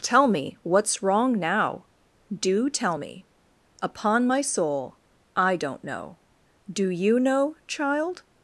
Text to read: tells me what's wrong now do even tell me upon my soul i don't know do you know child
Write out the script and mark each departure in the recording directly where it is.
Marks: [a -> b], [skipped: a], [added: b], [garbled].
[tells -> tell] me what's wrong now do [skipped: even] tell me upon my soul i don't know do you know child